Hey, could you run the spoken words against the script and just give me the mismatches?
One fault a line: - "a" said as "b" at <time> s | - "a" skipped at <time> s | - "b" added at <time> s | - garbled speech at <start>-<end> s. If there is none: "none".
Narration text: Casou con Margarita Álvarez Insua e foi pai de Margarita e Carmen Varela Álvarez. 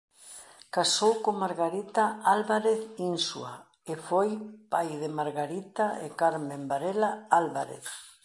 none